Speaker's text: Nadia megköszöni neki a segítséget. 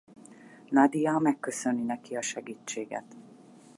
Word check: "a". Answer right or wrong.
right